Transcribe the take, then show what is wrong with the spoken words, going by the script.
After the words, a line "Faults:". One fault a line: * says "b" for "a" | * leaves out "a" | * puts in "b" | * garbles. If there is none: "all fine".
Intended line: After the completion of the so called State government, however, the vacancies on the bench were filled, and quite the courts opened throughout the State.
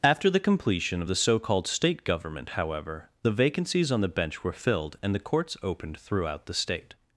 After the completion of the so called State government, however, the vacancies on the bench were filled, and the courts opened throughout the State.
Faults:
* leaves out "quite"